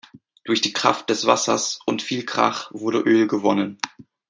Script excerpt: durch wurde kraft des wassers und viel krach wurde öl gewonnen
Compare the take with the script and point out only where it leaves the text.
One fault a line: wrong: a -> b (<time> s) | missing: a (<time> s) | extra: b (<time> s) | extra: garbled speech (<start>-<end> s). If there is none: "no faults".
wrong: wurde -> die (0.6 s)